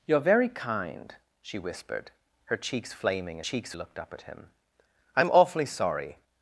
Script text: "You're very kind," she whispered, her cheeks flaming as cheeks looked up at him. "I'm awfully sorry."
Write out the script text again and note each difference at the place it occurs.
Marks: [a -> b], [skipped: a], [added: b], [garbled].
"You're very kind," she whispered, her cheeks flaming as cheeks looked up at him. "I'm awfully sorry."